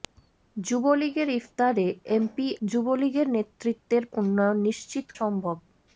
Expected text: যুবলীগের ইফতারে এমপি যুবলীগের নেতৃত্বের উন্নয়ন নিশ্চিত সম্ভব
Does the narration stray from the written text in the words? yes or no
no